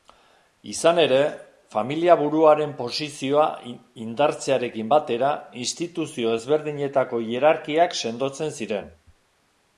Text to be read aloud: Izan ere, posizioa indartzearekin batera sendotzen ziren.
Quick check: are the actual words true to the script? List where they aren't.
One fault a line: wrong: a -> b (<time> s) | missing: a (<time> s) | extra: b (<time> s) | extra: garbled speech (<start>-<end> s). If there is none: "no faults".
extra: familiaburuaren (1.8 s)
extra: instituzio ezberdinetako hierarkiak (5.6 s)